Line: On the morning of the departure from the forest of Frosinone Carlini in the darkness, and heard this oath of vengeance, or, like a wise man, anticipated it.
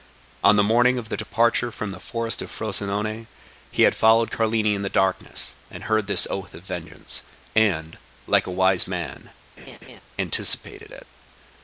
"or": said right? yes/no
no